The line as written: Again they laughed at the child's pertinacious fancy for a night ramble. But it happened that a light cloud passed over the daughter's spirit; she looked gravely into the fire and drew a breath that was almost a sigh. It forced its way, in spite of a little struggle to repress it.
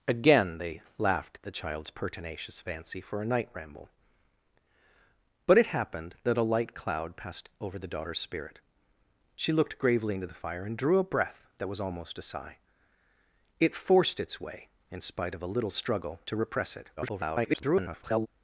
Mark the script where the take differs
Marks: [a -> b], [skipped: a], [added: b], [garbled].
Again they laughed at the child's pertinacious fancy for a night ramble. But it happened that a light cloud passed over the daughter's spirit; she looked gravely into the fire and drew a breath that was almost a sigh. It forced its way, in spite of a little struggle to repress it. [garbled]